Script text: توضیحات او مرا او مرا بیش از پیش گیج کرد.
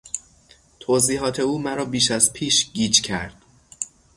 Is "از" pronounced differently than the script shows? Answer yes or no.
no